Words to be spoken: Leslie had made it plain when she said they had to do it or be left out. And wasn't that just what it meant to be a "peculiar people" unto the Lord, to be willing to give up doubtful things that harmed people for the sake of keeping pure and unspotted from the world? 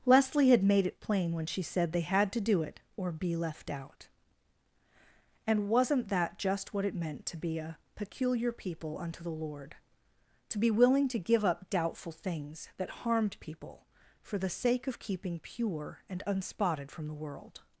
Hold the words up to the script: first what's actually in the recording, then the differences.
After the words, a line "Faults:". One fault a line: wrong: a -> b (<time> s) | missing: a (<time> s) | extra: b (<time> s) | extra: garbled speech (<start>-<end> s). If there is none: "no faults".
Leslie had made it plain when she said they had to do it or be left out. And wasn't that just what it meant to be a "peculiar people" unto the Lord, to be willing to give up doubtful things that harmed people for the sake of keeping pure and unspotted from the world?
Faults:
no faults